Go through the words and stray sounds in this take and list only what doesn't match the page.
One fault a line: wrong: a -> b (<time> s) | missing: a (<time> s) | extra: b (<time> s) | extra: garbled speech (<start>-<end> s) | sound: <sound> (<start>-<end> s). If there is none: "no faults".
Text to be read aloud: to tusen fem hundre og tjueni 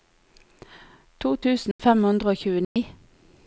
sound: dropout (1.7-1.8 s)
sound: dropout (2.6-2.8 s)